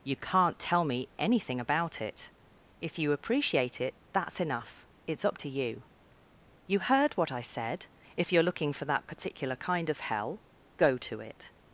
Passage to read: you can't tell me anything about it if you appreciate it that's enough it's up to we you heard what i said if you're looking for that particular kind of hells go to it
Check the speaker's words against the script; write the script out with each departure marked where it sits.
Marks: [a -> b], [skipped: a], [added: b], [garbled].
you can't tell me anything about it if you appreciate it that's enough it's up to [we -> you] you heard what i said if you're looking for that particular kind of [hells -> hell] go to it